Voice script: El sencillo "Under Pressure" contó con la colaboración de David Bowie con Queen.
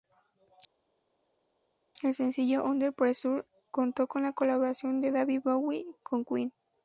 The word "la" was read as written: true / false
true